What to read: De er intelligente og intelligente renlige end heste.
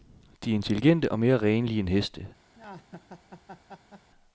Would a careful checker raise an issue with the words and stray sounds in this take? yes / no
yes